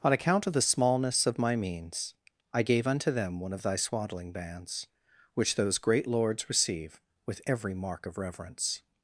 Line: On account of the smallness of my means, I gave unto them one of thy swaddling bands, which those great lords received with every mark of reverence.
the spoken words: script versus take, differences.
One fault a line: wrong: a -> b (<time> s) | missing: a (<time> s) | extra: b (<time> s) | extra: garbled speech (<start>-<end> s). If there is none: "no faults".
wrong: received -> receive (6.5 s)